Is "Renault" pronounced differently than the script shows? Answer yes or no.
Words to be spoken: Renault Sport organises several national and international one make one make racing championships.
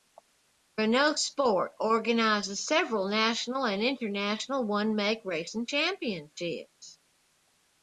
no